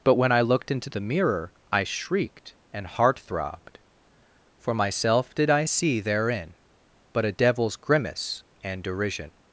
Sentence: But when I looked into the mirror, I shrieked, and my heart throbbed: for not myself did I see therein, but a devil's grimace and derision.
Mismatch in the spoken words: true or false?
true